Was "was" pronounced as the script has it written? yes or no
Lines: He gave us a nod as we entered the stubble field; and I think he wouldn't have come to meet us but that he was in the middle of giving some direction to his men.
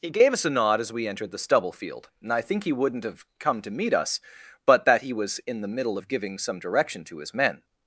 yes